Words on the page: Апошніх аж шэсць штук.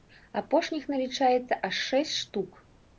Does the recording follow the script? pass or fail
fail